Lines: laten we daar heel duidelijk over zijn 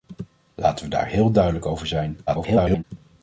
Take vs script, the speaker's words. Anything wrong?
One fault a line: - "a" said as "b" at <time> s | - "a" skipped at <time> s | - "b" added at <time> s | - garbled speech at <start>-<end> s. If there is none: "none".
- garbled speech at 2.3-2.8 s